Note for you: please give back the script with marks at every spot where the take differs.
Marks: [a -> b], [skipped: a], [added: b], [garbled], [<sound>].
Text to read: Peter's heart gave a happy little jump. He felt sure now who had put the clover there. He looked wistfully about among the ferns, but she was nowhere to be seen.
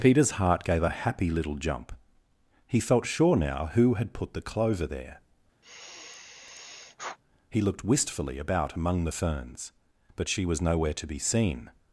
Peter's heart gave a happy little jump. He felt sure now who had put the clover there. [sigh] He looked wistfully about among the ferns, but she was nowhere to be seen.